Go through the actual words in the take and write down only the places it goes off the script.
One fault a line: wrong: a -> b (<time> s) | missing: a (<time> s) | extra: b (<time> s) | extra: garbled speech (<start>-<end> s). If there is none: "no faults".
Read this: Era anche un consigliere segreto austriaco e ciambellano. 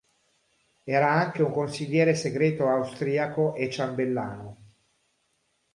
no faults